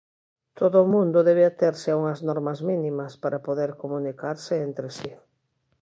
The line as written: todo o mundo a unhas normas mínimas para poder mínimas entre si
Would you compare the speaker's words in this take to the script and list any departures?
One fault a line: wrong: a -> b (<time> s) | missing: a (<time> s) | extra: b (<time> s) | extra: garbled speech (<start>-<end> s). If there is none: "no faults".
extra: debe aterse (1.3 s)
wrong: mínimas -> comunicarse (3.8 s)